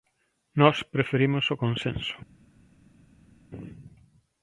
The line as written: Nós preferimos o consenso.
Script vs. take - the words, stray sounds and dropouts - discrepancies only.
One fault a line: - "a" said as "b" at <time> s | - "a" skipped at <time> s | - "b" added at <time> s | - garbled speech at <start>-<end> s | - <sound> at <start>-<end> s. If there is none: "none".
none